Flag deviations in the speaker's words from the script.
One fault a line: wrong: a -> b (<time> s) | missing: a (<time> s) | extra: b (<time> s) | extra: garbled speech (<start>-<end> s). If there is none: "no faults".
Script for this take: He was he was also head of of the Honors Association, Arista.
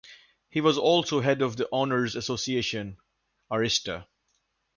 missing: he was (0.8 s)
missing: of (1.6 s)